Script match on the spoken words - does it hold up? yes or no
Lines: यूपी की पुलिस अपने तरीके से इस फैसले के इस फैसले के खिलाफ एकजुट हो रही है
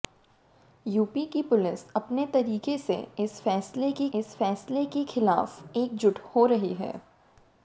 yes